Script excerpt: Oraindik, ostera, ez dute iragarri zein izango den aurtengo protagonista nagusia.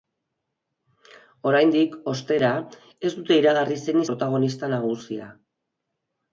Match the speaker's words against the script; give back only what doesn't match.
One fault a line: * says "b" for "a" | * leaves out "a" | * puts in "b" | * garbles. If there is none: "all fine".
* leaves out "izango den aurtengo"